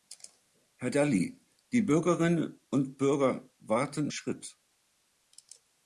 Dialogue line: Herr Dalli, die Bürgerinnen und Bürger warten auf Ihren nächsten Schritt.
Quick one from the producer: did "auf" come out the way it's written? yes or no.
no